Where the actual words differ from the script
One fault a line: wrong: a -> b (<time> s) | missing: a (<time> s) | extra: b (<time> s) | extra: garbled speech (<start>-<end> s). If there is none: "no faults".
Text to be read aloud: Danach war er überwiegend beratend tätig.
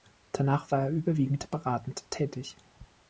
no faults